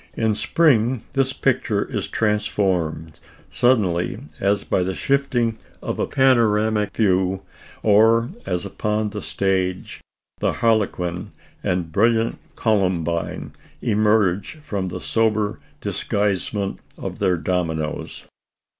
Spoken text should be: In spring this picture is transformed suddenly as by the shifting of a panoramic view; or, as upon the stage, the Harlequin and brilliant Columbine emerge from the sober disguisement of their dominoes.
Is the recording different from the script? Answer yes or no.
no